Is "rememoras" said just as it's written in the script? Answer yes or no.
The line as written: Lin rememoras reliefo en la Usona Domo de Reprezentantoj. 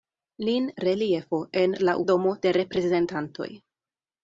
no